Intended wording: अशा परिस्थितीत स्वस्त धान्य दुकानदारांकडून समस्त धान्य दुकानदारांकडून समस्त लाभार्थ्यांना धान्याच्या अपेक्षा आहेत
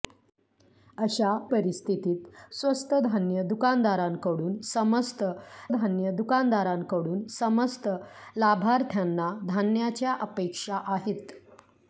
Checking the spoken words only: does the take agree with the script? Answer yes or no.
yes